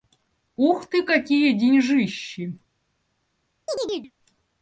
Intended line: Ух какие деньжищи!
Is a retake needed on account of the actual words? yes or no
yes